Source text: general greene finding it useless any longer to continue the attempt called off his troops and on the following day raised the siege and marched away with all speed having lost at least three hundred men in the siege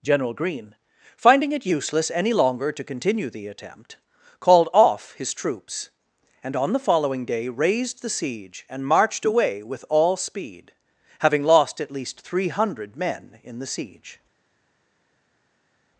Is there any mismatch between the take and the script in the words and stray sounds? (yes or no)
no